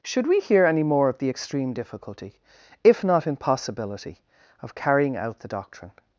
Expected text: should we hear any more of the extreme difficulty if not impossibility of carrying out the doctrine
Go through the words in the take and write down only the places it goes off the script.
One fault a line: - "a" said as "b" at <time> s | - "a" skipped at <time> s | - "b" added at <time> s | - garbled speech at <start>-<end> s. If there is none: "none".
none